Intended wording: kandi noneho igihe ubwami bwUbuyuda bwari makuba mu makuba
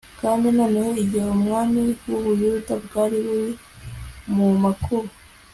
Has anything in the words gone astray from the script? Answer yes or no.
yes